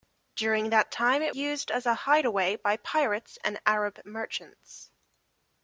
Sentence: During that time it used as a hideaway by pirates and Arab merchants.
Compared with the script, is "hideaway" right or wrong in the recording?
right